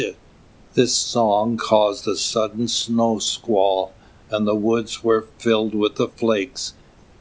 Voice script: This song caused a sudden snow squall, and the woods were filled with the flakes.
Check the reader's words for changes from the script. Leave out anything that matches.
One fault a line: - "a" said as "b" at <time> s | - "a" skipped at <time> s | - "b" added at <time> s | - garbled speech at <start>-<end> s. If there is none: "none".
none